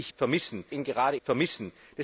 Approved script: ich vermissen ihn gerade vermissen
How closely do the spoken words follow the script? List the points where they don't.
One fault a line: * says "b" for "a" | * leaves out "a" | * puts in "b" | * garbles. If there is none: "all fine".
all fine